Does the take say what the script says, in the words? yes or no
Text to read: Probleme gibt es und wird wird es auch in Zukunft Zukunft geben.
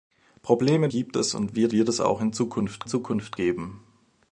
yes